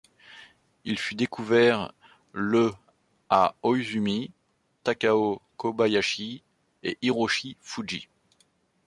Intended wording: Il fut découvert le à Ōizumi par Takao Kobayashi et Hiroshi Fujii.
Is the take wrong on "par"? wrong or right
wrong